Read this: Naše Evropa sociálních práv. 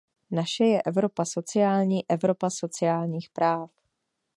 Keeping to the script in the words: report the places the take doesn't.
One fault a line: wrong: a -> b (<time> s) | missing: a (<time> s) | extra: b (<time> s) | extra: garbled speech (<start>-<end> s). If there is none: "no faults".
extra: je Evropa sociální (0.6 s)